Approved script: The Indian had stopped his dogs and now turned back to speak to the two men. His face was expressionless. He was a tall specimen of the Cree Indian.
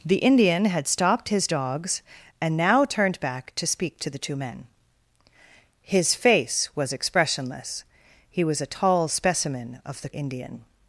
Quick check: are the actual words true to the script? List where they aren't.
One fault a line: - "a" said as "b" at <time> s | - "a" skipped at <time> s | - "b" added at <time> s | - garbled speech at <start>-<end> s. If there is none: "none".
- "Cree" skipped at 10.1 s